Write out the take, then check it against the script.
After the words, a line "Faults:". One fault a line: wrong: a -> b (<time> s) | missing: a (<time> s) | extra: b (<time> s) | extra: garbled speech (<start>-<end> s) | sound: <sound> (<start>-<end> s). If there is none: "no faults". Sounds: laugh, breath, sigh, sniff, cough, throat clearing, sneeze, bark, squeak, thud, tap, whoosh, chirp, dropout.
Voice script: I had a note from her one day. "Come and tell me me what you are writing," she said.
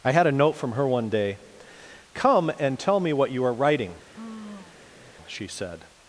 I had a note from her one day. "Come and tell me what you are writing," she said.
Faults:
missing: me (3.1 s)
sound: sigh (4.1-5.2 s)